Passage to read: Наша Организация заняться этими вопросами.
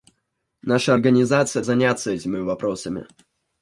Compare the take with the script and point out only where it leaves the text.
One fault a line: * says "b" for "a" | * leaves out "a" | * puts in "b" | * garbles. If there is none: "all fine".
all fine